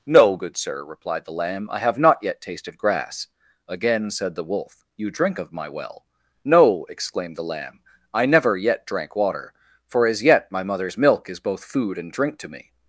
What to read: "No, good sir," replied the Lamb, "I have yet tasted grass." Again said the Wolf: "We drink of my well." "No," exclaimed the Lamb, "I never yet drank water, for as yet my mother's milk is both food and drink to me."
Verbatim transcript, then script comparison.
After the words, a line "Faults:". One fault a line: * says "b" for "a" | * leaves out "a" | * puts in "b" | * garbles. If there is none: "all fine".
"No, good sir," replied the Lamb, "I have not yet tasted grass." Again said the Wolf: "You drink of my well." "No," exclaimed the Lamb, "I never yet drank water, for as yet my mother's milk is both food and drink to me."
Faults:
* puts in "not"
* says "You" for "We"